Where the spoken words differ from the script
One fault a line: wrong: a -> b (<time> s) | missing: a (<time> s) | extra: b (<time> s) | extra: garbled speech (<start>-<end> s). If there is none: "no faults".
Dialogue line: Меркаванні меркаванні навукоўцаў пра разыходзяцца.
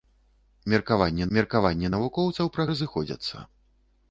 no faults